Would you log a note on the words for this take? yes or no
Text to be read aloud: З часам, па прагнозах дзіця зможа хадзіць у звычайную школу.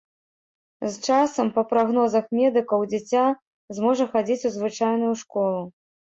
yes